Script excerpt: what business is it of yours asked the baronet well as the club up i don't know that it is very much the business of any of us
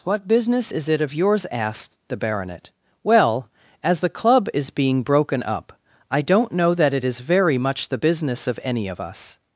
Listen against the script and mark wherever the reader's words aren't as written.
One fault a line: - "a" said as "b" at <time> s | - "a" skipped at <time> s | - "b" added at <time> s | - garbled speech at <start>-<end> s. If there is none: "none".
- "is being broken" added at 4.5 s